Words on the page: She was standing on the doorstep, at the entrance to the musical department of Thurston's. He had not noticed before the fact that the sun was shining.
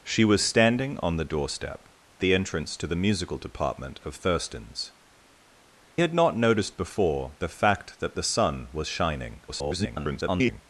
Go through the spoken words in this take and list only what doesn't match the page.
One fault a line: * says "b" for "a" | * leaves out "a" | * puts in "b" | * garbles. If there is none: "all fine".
* leaves out "at"
* leaves out "He"
* garbles